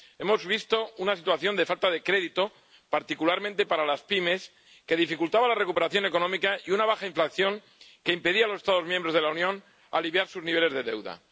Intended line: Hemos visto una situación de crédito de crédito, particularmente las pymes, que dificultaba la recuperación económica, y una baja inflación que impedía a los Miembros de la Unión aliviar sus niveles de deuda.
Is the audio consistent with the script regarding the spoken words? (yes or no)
no